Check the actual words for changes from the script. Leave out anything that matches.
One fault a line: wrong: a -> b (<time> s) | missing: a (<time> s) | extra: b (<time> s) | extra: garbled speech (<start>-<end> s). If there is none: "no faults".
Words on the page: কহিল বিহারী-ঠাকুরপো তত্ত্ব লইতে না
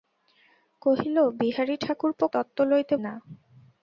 no faults